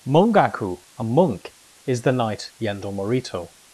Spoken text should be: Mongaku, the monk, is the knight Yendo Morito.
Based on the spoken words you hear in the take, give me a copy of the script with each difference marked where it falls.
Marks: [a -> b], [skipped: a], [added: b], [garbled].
Mongaku, [the -> a] monk, is the knight Yendo Morito.